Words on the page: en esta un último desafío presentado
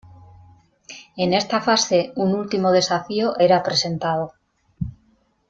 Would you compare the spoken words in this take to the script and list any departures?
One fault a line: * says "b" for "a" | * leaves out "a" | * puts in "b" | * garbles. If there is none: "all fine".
* puts in "fase"
* puts in "era"